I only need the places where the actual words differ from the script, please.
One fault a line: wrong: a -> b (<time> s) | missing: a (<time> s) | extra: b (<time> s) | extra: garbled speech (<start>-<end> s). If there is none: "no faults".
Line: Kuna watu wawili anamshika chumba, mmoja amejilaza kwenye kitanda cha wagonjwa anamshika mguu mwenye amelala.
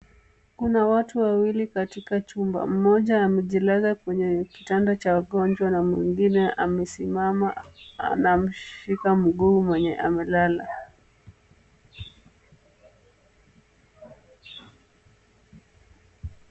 wrong: anamshika -> katika (1.7 s)
extra: na mwingine amesimama (5.7 s)